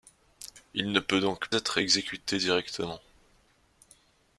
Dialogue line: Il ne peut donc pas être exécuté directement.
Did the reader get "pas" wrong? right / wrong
wrong